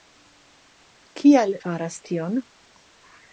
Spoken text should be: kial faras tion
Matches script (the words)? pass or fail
pass